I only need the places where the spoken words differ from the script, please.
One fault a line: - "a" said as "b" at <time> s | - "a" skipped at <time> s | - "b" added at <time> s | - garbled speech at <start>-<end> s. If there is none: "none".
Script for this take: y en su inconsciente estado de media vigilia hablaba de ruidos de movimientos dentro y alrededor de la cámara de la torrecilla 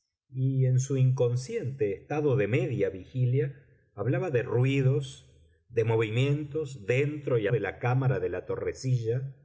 - "alrededor" skipped at 7.5 s